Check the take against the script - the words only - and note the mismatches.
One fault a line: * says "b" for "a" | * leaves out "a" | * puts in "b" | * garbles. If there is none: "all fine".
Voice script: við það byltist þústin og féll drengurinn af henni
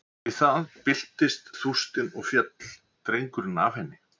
all fine